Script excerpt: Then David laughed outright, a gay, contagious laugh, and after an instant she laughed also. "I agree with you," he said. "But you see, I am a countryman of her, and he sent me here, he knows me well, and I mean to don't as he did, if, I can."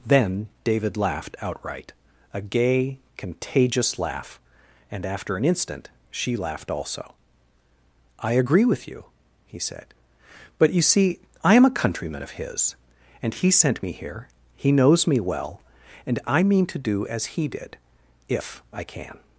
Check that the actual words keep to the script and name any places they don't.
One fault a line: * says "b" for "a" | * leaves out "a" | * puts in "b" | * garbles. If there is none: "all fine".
* says "his" for "her"
* says "do" for "don't"